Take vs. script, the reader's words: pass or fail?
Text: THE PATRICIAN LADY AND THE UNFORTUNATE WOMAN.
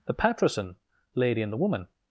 fail